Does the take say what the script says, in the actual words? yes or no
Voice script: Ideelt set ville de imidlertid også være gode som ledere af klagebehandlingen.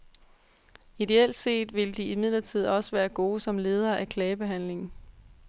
yes